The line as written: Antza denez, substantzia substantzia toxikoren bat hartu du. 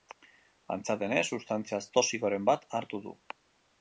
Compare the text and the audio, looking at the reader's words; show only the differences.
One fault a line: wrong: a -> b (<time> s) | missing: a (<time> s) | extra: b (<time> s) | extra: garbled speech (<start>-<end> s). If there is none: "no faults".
missing: substantzia (1.8 s)